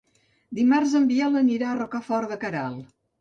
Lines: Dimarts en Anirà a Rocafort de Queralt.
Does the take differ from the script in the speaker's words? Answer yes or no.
yes